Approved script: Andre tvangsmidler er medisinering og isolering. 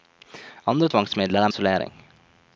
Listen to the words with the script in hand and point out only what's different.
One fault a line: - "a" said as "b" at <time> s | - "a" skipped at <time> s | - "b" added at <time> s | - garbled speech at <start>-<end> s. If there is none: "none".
- "medisinering" skipped at 1.5 s